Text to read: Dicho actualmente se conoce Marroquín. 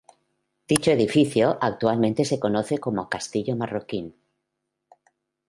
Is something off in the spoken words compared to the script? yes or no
yes